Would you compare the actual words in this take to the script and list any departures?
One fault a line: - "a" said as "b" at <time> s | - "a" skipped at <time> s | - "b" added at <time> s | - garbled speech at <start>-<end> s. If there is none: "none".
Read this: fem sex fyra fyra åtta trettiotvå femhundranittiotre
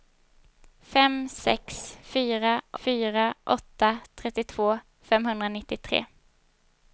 none